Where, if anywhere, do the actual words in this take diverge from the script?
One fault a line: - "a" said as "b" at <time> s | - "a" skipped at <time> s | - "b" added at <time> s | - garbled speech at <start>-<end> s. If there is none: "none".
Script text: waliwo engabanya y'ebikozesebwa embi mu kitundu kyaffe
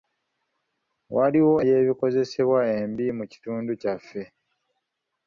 - "engabanya" skipped at 1.6 s